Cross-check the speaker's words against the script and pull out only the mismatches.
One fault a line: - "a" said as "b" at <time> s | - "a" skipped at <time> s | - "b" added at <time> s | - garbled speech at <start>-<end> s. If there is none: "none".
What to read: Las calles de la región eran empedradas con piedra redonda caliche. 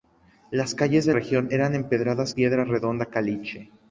- "la" skipped at 1.1 s
- "con" skipped at 2.3 s